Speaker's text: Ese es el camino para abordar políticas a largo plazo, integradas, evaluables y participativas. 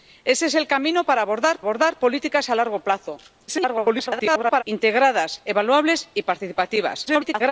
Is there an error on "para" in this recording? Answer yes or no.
no